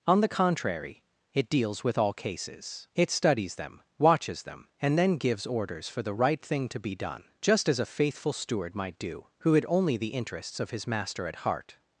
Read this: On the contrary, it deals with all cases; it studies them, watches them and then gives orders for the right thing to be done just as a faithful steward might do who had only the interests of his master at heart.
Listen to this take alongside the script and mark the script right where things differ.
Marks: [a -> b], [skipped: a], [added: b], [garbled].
On the contrary, it deals with all cases; it studies them, watches them and then gives orders for the right thing to be done just as a faithful steward might do who had only the interests of his master at heart.